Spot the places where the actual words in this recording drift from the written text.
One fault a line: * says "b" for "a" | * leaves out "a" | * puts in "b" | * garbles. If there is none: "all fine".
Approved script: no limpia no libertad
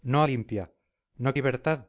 all fine